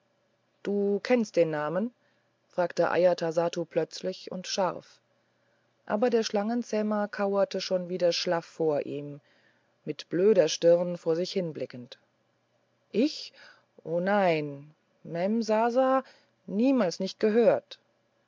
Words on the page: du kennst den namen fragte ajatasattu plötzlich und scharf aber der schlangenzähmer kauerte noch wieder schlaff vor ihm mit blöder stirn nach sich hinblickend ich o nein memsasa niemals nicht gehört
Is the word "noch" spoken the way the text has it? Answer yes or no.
no